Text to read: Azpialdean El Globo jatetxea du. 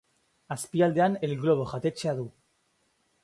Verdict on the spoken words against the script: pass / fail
pass